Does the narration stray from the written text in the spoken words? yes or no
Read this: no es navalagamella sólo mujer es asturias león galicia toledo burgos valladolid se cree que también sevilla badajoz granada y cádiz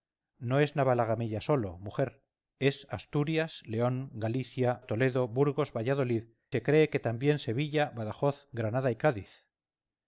no